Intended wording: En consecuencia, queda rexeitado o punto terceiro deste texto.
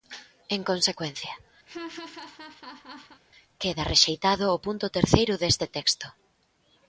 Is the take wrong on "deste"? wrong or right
right